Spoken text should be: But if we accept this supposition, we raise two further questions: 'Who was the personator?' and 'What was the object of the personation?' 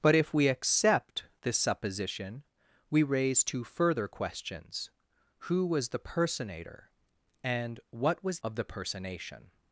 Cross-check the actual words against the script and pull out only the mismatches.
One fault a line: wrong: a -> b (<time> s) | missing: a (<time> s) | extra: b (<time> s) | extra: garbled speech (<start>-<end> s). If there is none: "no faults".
missing: the object (8.4 s)